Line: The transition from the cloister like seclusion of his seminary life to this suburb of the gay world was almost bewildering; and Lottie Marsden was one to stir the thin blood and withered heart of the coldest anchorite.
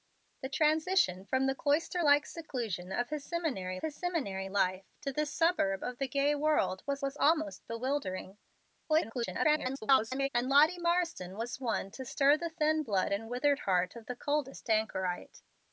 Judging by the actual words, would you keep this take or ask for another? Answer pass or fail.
fail